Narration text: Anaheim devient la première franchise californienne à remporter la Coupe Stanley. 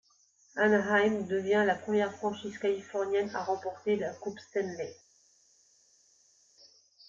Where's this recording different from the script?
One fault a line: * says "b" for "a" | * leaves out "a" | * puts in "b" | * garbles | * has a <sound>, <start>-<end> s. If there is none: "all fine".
all fine